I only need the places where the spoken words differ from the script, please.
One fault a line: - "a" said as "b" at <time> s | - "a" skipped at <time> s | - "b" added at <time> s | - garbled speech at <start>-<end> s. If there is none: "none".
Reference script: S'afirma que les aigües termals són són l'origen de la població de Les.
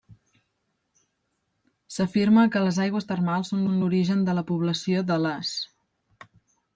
none